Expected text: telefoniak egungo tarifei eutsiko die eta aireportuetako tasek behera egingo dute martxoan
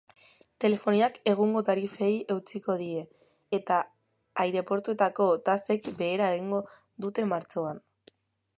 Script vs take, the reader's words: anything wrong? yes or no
no